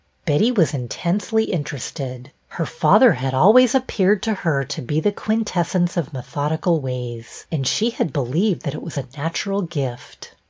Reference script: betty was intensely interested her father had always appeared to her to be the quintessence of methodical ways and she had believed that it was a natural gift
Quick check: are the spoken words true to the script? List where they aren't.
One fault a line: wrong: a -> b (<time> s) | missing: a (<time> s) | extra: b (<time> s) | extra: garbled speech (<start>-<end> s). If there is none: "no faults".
no faults